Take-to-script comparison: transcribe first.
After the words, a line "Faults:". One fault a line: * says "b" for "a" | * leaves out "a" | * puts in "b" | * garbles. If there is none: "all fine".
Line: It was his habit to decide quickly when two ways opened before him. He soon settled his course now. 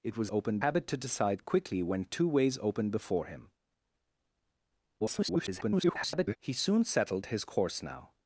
It was opened habit to decide quickly when two ways opened before him. [garbled] He soon settled his course now.
Faults:
* says "opened" for "his"
* garbles